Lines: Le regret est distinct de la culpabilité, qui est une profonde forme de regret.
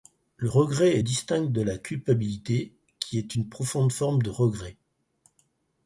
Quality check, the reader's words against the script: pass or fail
pass